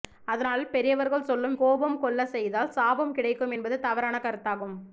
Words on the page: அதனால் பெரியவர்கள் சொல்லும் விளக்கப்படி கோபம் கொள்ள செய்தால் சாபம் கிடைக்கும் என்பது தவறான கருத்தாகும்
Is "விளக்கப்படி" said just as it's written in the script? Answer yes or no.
no